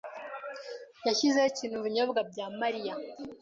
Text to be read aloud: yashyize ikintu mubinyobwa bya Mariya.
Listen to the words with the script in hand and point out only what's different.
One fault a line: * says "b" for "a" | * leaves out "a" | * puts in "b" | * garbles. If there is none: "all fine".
all fine